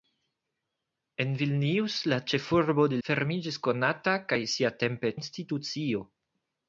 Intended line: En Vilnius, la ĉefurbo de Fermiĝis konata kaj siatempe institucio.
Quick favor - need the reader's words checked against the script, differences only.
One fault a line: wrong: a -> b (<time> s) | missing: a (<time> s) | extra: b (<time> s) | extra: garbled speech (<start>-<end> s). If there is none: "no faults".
no faults